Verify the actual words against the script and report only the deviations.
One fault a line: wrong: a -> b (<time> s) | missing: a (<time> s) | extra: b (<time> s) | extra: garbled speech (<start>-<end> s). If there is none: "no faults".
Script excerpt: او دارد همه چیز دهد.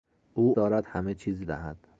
no faults